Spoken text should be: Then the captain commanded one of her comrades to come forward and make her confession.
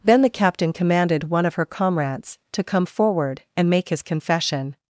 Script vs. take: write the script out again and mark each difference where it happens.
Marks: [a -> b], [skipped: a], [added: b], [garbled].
Then the captain commanded one of her comrades to come forward and make [her -> his] confession.